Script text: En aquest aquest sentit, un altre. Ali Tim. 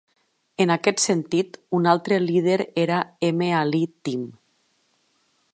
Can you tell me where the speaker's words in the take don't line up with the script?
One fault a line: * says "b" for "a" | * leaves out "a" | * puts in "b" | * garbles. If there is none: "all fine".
* leaves out "aquest"
* puts in "líder era M"